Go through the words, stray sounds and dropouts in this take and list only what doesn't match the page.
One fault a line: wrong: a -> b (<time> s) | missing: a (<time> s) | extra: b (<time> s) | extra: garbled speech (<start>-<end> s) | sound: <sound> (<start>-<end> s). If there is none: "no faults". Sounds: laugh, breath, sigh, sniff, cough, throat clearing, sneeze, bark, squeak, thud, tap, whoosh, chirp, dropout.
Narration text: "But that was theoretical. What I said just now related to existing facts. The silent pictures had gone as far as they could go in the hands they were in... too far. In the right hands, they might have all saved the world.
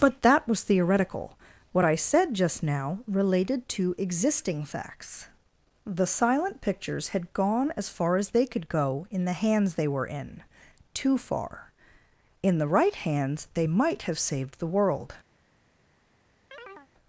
missing: all (14.2 s)
sound: chirp (16.5-16.9 s)